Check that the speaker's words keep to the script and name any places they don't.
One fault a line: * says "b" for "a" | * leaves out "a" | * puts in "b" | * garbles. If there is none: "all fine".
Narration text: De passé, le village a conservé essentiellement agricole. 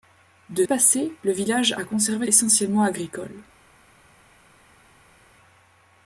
all fine